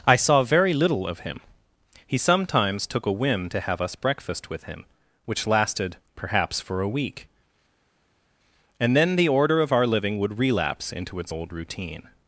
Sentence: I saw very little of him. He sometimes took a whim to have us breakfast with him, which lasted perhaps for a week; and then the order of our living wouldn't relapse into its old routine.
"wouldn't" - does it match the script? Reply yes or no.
no